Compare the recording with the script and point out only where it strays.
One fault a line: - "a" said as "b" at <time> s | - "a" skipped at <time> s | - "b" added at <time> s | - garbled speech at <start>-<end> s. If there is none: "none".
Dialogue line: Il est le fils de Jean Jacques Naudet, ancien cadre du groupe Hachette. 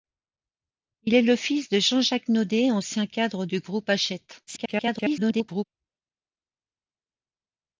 - garbled speech at 4.5-5.6 s